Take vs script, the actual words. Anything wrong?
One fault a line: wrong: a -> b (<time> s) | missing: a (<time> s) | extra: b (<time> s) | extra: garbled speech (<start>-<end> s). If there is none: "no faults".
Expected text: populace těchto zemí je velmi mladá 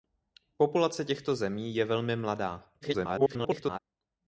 extra: garbled speech (2.8-3.8 s)